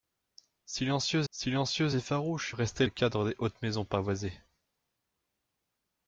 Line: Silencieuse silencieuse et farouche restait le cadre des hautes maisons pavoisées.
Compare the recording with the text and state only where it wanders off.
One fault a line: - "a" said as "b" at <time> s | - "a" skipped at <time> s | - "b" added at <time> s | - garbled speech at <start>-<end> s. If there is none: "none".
none